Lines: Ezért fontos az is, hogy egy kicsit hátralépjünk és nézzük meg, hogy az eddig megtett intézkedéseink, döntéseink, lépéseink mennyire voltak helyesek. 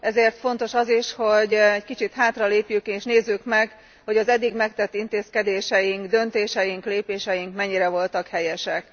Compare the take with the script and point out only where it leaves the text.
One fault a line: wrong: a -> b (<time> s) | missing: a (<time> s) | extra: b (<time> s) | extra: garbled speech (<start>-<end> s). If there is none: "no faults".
no faults